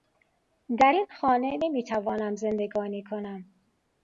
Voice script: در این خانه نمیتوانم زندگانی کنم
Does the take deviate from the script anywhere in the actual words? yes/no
no